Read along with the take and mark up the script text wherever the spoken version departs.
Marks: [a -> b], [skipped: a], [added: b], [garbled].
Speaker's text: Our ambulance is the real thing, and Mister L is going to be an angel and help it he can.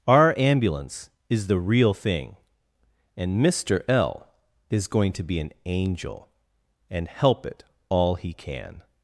Our ambulance is the real thing, and Mister L is going to be an angel and help it [added: all] he can.